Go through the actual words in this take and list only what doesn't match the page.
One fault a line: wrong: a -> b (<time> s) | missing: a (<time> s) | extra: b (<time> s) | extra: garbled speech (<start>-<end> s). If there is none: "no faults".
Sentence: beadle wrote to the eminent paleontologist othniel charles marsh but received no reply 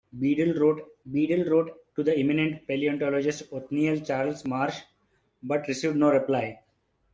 extra: beadle wrote (1.1 s)